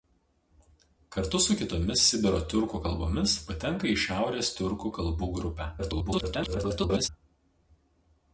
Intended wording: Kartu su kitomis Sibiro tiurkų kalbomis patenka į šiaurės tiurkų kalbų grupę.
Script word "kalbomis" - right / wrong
right